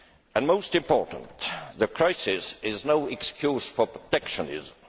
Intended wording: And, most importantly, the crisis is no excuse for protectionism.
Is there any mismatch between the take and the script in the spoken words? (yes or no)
no